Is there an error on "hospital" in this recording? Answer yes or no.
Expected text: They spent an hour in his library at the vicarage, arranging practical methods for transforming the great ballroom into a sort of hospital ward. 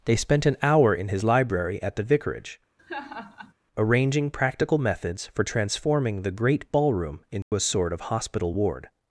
no